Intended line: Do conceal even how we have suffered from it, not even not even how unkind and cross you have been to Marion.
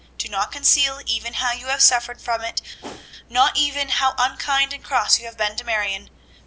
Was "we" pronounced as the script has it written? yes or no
no